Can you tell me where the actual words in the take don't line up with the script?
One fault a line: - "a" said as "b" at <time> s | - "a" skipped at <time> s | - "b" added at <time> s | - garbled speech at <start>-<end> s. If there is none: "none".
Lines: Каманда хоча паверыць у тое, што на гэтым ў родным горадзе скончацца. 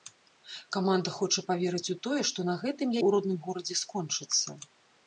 none